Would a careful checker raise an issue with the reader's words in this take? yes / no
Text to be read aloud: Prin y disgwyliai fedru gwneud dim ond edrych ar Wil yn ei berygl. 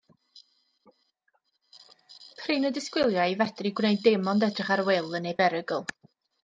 no